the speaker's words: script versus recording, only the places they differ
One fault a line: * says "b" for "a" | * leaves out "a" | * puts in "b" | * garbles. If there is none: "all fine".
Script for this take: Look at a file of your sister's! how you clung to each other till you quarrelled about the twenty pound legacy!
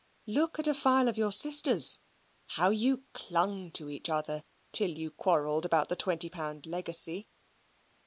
all fine